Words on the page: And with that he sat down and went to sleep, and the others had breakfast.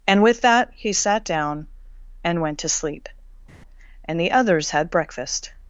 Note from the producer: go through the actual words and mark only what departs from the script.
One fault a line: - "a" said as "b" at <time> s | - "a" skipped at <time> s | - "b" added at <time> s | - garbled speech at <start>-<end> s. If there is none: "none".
none